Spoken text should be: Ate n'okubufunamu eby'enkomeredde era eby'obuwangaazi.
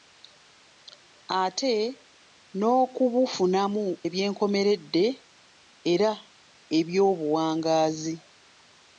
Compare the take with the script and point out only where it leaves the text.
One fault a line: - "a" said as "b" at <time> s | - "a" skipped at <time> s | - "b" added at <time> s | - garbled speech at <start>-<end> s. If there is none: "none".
none